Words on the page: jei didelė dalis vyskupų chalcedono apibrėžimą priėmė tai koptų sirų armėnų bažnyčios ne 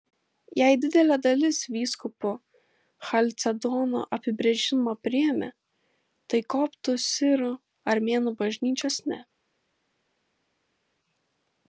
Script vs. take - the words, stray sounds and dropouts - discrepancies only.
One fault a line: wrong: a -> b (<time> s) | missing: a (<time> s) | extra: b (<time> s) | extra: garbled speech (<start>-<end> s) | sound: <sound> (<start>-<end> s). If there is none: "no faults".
no faults